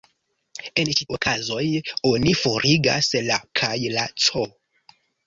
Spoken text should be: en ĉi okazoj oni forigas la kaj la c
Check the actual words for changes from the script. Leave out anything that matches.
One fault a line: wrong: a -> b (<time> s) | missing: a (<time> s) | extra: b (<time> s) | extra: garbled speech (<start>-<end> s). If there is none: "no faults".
no faults